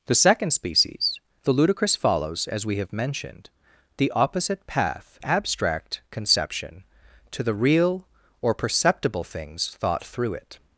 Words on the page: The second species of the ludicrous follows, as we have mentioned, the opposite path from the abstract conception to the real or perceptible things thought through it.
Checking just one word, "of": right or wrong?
wrong